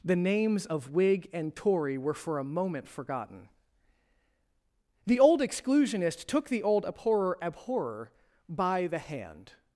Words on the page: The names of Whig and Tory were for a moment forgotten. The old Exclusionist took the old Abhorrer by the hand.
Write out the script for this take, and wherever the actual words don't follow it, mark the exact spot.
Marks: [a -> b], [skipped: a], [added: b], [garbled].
The names of Whig and Tory were for a moment forgotten. The old Exclusionist took the old Abhorrer [added: Abhorrer] by the hand.